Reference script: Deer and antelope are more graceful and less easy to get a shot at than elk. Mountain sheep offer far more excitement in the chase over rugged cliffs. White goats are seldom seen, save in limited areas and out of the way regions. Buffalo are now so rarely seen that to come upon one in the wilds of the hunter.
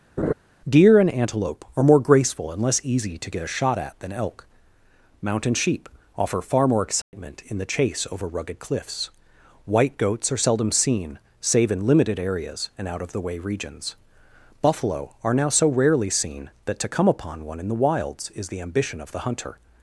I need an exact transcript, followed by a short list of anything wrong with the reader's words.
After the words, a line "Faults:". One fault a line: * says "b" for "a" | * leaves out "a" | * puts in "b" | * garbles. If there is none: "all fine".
Deer and antelope are more graceful and less easy to get a shot at than elk. Mountain sheep offer far more excitement in the chase over rugged cliffs. White goats are seldom seen, save in limited areas and out of the way regions. Buffalo are now so rarely seen that to come upon one in the wilds is the ambition of the hunter.
Faults:
* puts in "is the ambition"